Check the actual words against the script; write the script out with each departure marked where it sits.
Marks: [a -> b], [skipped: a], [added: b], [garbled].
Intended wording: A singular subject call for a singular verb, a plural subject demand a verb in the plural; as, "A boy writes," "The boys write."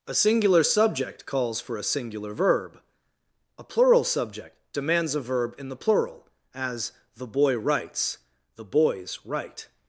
A singular subject [call -> calls] for a singular verb, a plural subject [demand -> demands] a verb in the plural; as, ["A -> The] boy writes," "The boys write."